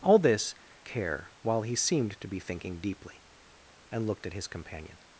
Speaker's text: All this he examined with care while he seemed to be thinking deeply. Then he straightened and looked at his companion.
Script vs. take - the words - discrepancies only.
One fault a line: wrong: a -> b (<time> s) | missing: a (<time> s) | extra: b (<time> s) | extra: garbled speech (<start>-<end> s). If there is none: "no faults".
missing: he examined with (0.6 s)
missing: Then he straightened (3.2 s)